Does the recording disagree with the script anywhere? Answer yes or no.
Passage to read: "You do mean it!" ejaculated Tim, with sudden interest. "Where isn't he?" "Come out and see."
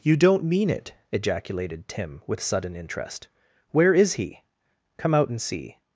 yes